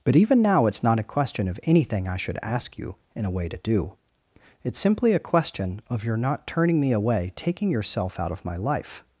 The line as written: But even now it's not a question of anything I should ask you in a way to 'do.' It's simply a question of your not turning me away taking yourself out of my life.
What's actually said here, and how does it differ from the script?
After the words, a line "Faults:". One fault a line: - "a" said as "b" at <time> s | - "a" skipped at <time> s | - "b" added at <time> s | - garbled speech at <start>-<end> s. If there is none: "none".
But even now it's not a question of anything I should ask you in a way to 'do.' It's simply a question of your not turning me away taking yourself out of my life.
Faults:
none